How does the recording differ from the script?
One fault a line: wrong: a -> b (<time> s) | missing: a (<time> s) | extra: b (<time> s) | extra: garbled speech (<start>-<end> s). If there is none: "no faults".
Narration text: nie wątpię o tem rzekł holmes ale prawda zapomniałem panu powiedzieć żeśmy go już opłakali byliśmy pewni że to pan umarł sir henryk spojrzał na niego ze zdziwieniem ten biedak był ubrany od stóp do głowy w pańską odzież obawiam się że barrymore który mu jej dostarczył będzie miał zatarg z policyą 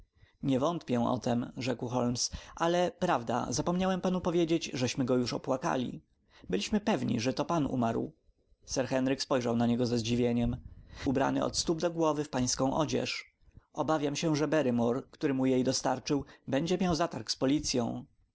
missing: ten biedak był (10.6 s)